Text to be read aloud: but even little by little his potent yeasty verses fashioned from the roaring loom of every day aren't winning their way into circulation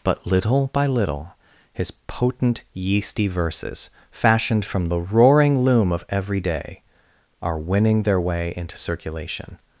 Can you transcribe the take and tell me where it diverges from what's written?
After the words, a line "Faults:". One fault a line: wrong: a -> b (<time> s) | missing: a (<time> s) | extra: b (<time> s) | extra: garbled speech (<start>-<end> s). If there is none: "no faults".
but little by little his potent yeasty verses fashioned from the roaring loom of every day are winning their way into circulation
Faults:
missing: even (0.2 s)
wrong: aren't -> are (7.4 s)